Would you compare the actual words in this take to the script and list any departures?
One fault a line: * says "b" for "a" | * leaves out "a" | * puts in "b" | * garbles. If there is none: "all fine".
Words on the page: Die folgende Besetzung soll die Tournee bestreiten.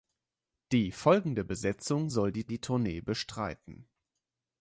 * puts in "die"